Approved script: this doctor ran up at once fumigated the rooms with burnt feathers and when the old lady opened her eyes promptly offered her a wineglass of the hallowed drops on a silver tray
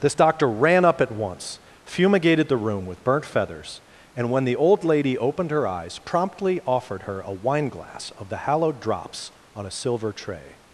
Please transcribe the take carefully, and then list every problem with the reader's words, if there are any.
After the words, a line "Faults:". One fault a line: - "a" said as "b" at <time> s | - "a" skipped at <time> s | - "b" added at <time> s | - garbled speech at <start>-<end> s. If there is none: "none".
this doctor ran up at once fumigated the room with burnt feathers and when the old lady opened her eyes promptly offered her a wineglass of the hallowed drops on a silver tray
Faults:
- "rooms" said as "room" at 2.6 s